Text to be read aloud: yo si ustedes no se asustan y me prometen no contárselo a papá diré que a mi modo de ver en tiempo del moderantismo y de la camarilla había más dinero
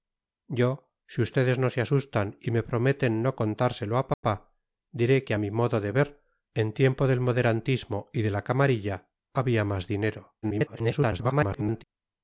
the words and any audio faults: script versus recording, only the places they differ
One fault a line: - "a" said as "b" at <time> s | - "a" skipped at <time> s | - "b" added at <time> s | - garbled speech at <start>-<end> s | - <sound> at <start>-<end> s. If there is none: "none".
- dropout at 4.1-4.2 s
- garbled speech at 10.4-11.8 s